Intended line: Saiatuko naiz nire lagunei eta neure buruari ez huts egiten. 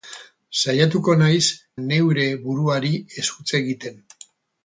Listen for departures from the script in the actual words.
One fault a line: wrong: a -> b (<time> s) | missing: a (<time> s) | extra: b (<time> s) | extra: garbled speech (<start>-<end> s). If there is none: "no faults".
missing: nire lagunei eta (1.4 s)